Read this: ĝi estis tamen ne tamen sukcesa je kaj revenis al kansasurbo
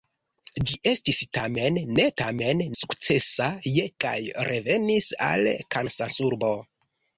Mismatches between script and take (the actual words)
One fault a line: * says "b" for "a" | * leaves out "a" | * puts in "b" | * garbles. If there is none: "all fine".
all fine